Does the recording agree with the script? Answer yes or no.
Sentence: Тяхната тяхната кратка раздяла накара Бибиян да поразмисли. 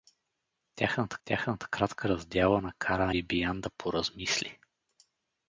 yes